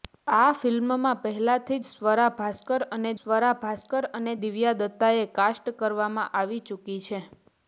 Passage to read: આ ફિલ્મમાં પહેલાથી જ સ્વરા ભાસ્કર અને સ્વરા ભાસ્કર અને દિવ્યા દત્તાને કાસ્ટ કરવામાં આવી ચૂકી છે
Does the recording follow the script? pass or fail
pass